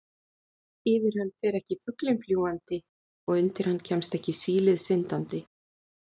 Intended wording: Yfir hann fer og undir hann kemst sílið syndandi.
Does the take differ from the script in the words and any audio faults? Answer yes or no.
yes